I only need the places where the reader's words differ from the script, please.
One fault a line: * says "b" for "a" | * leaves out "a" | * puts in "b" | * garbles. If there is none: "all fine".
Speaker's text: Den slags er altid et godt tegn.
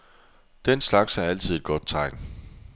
all fine